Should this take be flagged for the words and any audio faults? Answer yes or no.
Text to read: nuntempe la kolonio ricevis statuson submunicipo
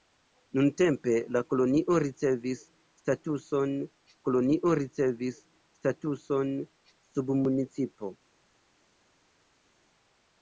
yes